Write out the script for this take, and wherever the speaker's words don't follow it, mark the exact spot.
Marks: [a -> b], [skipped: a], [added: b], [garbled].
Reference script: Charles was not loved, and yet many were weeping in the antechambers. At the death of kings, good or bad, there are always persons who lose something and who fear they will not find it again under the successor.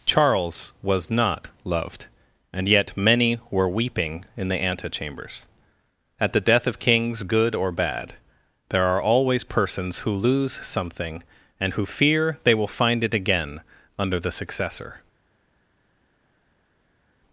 Charles was not loved, and yet many were weeping in the antechambers. At the death of kings, good or bad, there are always persons who lose something and who fear they will [skipped: not] find it again under the successor.